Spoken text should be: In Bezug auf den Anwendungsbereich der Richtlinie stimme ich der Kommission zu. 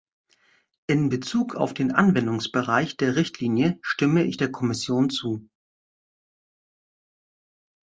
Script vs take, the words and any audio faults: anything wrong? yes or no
no